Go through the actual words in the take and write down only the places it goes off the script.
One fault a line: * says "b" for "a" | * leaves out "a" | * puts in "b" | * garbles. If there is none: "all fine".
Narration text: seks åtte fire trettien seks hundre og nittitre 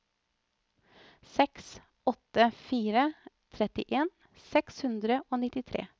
all fine